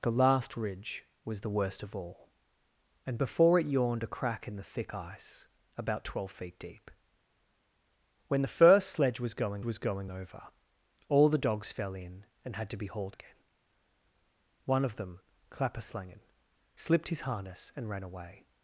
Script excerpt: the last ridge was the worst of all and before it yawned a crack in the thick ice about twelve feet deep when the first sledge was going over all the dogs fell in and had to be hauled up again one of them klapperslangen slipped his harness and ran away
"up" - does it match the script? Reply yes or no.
no